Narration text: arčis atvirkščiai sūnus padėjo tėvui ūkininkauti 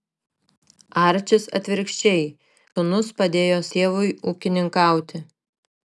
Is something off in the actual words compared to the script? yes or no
no